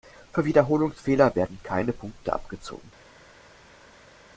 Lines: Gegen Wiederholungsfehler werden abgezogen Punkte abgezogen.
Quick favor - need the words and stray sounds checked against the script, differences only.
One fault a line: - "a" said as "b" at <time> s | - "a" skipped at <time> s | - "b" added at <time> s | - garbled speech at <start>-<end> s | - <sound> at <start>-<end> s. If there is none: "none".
- "Gegen" said as "Für" at 0.3 s
- "abgezogen" said as "keine" at 1.6 s